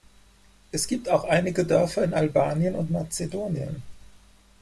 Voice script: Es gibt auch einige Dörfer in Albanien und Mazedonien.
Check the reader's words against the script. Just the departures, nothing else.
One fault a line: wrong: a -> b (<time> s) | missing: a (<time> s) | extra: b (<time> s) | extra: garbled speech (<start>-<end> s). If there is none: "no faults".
no faults